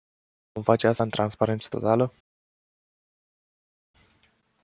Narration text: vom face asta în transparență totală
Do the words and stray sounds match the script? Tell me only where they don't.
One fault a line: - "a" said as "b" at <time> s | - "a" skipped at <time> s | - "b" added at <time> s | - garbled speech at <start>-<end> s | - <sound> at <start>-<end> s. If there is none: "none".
none